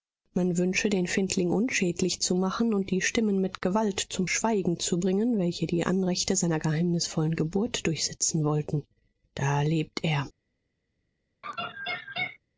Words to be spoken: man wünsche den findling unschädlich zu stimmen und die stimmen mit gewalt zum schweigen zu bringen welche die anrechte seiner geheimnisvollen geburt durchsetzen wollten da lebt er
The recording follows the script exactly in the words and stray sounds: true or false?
false